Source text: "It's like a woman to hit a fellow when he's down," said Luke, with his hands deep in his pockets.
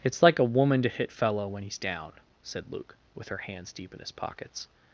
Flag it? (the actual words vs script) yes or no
yes